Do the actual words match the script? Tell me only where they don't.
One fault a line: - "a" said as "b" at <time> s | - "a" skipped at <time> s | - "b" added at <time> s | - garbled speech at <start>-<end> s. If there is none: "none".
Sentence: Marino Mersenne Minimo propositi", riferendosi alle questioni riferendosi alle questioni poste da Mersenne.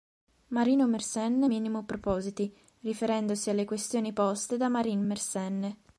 - "riferendosi alle questioni" skipped at 4.1 s
- "Marin" added at 4.7 s